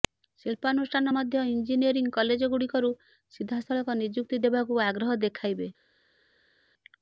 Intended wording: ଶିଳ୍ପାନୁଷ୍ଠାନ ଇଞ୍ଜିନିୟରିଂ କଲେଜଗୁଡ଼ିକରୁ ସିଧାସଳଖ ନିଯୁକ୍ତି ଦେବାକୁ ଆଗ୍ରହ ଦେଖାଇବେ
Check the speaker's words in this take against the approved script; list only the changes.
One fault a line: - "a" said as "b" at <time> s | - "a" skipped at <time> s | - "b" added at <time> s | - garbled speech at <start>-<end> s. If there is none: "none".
- "ମଧ୍ୟ" added at 1.1 s